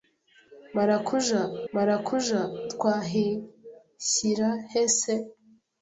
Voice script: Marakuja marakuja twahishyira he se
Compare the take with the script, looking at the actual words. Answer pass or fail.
pass